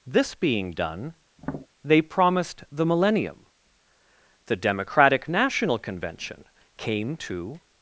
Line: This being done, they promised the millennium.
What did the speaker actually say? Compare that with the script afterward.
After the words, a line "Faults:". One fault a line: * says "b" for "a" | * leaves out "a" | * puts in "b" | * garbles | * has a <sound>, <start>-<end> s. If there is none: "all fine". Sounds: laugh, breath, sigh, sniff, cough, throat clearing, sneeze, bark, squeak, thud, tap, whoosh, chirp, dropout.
This being done, they promised the millennium. The Democratic National Convention came to
Faults:
* has a tap, 1.4-1.7 s
* puts in "The Democratic National Convention came to"